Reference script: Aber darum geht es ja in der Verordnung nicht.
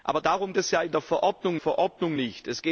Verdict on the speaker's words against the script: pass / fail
fail